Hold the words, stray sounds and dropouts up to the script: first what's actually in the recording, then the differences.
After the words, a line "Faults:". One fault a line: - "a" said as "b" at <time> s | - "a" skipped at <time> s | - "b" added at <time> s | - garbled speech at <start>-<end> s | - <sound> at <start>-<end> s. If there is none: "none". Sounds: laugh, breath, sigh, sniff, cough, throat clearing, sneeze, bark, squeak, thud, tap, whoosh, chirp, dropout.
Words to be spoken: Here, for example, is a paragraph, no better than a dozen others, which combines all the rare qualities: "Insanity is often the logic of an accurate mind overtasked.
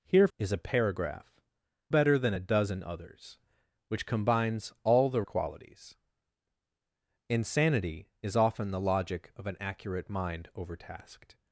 Here, is a paragraph, better than a dozen others, which combines all the qualities: "Insanity is often the logic of an accurate mind overtasked.
Faults:
- "for example" skipped at 0.3 s
- "no" skipped at 1.4 s
- "rare" skipped at 5.2 s